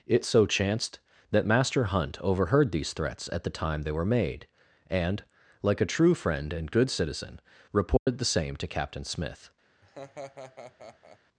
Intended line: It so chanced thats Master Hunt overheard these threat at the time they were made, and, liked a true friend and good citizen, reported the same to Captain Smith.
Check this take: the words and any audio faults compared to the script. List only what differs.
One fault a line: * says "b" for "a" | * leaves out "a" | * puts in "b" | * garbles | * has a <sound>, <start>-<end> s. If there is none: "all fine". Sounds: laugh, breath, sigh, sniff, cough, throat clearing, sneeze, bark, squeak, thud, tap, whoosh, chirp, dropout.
* says "that" for "thats"
* says "threats" for "threat"
* says "like" for "liked"
* has a dropout, 8.0-8.1 s
* has a laugh, 9.8-11.2 s